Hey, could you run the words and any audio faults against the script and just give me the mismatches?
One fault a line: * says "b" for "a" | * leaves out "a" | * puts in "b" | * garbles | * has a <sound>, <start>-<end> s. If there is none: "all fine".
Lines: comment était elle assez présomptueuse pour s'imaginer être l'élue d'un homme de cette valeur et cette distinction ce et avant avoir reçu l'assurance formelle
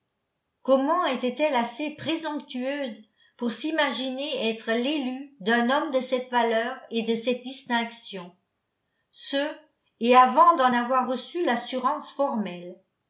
* puts in "de"
* puts in "d'en"